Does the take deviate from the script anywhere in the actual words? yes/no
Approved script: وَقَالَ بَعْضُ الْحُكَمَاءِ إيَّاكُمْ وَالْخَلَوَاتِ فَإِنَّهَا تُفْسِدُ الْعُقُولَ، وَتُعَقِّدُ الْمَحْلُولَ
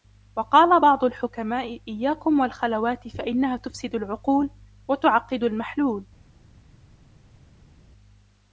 no